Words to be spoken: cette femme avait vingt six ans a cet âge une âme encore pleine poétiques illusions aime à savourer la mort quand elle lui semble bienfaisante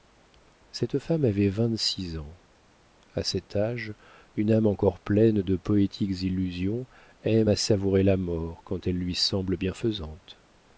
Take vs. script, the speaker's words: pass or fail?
fail